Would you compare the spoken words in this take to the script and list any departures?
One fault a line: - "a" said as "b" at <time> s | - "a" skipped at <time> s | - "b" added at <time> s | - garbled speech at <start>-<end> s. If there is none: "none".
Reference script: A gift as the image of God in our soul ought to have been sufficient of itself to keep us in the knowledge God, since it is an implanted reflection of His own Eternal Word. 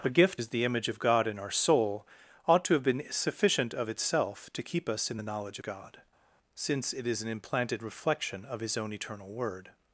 none